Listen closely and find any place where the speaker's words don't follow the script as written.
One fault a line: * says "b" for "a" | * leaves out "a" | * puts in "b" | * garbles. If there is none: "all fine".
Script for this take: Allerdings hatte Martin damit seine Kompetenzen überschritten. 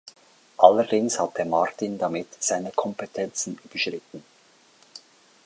all fine